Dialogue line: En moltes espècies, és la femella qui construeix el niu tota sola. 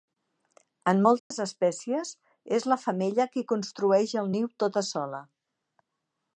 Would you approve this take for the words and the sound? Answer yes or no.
no